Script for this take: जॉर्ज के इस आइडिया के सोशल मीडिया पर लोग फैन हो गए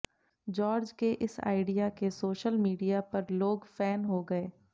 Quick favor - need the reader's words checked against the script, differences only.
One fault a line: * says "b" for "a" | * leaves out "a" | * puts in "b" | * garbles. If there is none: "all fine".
all fine